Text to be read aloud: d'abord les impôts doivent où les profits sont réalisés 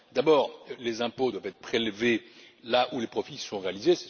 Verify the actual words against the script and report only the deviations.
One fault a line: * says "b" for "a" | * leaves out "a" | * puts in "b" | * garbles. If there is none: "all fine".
* puts in "être prélevés là"